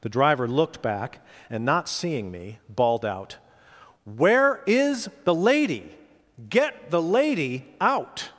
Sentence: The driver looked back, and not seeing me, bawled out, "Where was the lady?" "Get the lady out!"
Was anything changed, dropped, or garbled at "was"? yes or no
yes